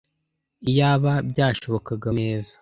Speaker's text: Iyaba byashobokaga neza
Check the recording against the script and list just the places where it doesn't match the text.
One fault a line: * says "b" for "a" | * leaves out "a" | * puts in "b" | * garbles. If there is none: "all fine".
all fine